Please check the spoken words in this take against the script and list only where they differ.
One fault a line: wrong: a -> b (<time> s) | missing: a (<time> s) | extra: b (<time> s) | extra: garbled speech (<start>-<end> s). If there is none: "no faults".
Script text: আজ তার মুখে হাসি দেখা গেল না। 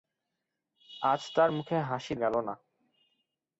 missing: দেখা (2.1 s)